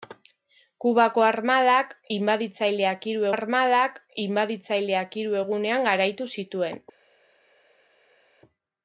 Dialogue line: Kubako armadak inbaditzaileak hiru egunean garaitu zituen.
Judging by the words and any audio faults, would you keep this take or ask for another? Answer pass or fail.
fail